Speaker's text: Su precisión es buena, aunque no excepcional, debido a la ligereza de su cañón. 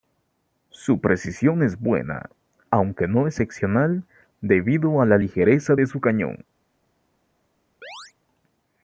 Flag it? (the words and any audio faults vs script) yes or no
yes